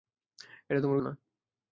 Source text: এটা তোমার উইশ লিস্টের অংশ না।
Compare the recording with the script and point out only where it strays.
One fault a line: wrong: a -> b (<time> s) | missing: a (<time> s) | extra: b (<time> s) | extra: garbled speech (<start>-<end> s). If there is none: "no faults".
missing: উইশ লিস্টের অংশ (1.0 s)